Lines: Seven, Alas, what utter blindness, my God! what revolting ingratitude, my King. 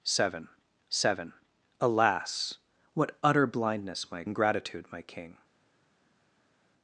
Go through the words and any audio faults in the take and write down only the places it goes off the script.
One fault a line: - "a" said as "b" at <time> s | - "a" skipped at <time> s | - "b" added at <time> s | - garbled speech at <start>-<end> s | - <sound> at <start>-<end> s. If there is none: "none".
- "seven" added at 0.9 s
- "God what revolting" skipped at 4.2 s